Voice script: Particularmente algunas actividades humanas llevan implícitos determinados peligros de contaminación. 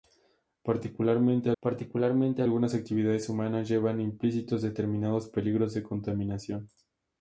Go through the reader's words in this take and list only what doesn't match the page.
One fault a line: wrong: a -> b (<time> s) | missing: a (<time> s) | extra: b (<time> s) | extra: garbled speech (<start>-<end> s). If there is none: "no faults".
extra: particularmente (1.6 s)